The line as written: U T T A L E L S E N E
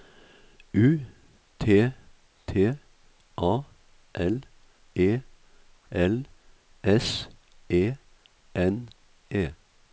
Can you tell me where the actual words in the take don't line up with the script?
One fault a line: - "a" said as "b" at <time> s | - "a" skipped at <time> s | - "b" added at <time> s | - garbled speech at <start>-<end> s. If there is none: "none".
none